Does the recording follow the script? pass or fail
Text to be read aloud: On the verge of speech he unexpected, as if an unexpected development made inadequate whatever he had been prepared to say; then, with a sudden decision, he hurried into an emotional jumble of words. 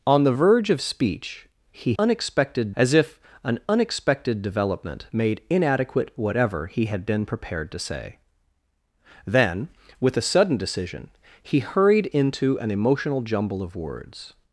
pass